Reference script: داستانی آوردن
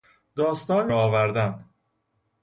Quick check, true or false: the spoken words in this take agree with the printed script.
true